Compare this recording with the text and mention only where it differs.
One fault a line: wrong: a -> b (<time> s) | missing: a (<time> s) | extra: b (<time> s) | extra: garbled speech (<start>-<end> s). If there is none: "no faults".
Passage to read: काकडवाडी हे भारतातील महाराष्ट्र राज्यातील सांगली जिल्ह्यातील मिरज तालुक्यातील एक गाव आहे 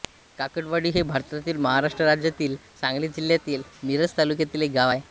no faults